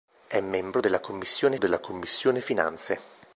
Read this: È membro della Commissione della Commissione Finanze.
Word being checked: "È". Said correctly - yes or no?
yes